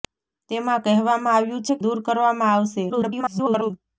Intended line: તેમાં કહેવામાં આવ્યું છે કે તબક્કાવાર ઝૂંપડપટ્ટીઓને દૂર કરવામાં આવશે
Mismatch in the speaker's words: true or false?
true